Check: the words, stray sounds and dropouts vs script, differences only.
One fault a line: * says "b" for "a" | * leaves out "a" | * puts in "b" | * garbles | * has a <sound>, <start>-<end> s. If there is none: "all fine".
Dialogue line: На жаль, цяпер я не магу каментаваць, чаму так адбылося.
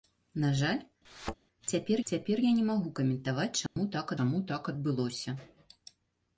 * has a thud, 1.0-1.4 s
* puts in "цяпер"
* has a dropout, 3.7-3.8 s
* puts in "чаму так"